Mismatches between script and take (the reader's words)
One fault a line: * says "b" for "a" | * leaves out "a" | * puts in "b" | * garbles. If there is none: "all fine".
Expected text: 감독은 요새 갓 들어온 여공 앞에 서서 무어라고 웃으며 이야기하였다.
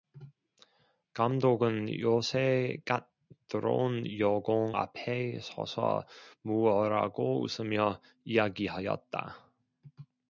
all fine